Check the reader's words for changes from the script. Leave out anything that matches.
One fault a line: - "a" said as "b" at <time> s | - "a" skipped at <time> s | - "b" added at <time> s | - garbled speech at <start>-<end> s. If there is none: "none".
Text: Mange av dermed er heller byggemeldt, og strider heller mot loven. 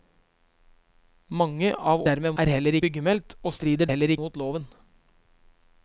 none